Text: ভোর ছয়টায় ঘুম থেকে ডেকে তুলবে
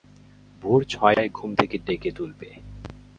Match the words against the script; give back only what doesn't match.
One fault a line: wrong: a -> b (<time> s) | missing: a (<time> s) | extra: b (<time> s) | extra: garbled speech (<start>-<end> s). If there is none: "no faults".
no faults